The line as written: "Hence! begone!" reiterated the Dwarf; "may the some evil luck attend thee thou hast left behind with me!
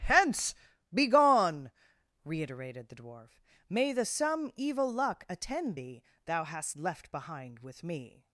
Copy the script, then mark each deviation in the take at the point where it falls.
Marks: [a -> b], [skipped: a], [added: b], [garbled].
"Hence! begone!" reiterated the Dwarf; "may the some evil luck attend thee thou hast left behind with me!